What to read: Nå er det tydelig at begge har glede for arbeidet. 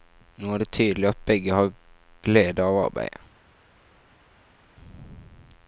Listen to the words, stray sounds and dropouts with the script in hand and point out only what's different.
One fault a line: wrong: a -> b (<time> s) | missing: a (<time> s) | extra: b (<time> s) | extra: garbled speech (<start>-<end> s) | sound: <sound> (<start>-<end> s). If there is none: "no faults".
wrong: for -> av (2.6 s)